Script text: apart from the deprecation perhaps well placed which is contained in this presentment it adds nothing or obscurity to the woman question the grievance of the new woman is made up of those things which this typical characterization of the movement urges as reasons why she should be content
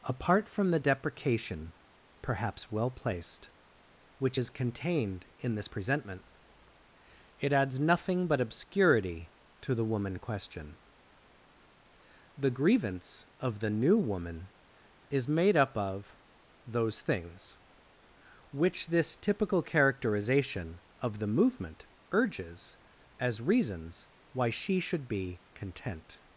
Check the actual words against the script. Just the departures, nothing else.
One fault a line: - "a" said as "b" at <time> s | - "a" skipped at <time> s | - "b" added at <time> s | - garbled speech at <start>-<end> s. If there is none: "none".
- "or" said as "but" at 8.3 s